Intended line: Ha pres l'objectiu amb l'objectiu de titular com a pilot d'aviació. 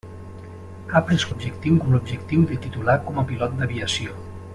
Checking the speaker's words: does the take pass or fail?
pass